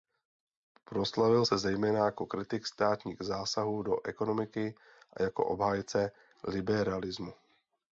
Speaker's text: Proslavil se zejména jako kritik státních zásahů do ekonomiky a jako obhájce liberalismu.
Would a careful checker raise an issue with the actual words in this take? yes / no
no